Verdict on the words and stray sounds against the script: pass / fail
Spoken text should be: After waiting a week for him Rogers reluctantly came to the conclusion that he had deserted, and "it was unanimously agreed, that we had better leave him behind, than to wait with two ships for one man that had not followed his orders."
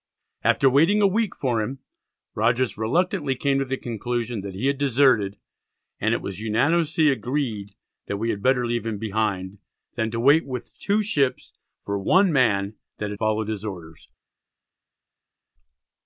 fail